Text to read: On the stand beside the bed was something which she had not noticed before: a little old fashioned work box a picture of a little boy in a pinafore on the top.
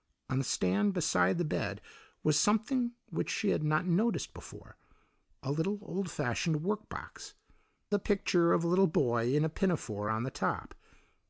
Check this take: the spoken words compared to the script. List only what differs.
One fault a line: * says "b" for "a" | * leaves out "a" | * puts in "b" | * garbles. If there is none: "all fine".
all fine